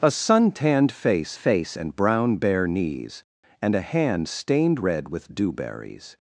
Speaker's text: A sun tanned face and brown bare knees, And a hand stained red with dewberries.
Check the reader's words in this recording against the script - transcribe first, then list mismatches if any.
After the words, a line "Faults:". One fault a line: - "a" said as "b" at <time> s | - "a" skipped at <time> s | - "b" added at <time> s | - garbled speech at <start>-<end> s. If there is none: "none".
A sun tanned face face and brown bare knees, And a hand stained red with dewberries.
Faults:
- "face" added at 1.3 s